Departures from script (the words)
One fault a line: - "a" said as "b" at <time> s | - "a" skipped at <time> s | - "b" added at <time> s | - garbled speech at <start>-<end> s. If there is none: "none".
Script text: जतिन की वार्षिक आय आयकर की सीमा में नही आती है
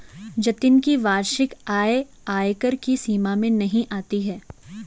none